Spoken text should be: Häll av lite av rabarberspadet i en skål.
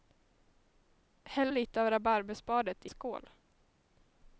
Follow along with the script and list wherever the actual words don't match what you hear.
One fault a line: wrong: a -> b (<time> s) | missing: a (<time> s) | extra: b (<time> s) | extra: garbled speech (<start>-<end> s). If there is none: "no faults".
missing: av (1.5 s)
missing: en (2.9 s)